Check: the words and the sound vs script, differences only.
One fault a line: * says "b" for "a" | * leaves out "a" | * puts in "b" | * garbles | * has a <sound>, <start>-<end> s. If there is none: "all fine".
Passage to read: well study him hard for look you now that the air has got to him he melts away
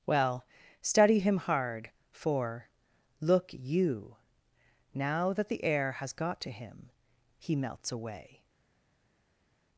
all fine